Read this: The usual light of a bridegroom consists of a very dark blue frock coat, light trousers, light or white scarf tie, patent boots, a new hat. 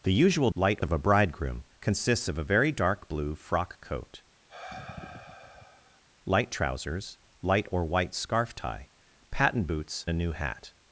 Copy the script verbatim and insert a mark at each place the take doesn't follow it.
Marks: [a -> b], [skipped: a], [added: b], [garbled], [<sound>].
The usual light of a bridegroom consists of a very dark blue frock coat, [sigh] light trousers, light or white scarf tie, patent boots, a new hat.